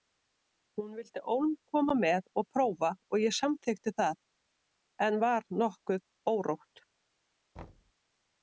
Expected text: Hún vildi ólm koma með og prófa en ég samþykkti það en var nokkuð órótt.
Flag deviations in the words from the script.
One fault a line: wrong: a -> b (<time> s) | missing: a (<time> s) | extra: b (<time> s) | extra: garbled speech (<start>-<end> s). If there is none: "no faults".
wrong: en -> og (3.2 s)